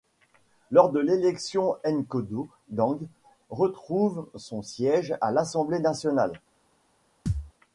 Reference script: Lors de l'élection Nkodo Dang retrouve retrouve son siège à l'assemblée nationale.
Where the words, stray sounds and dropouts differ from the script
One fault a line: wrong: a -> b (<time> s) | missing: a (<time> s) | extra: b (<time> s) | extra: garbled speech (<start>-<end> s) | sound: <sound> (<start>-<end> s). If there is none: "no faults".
missing: retrouve (4.3 s)
sound: thud (7.3-7.5 s)